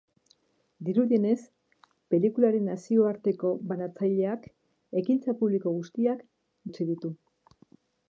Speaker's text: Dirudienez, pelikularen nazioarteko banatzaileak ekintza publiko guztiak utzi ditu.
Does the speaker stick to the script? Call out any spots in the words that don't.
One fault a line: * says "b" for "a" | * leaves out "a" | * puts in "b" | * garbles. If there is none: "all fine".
all fine